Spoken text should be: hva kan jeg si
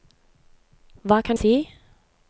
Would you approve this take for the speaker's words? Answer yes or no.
no